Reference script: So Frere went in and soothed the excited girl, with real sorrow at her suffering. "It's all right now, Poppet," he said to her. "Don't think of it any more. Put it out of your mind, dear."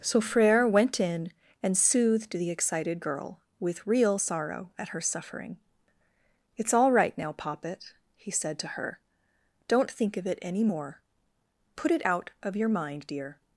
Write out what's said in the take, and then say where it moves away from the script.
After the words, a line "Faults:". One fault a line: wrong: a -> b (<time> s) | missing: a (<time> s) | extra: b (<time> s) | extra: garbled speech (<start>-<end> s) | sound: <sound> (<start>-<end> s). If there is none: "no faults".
So Frere went in and soothed the excited girl, with real sorrow at her suffering. "It's all right now, Poppet," he said to her. "Don't think of it any more. Put it out of your mind, dear."
Faults:
no faults